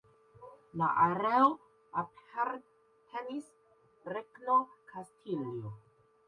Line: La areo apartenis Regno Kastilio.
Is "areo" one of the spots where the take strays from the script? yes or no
no